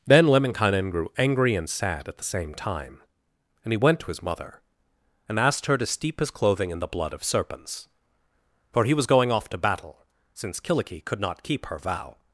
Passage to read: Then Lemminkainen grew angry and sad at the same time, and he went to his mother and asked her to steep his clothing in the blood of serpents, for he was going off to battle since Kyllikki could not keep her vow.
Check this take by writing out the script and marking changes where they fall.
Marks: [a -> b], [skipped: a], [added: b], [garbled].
Then Lemminkainen grew angry and sad at the same time, and he went to his mother and asked her to steep his clothing in the blood of serpents, for he was going off to battle since Kyllikki could not keep her vow.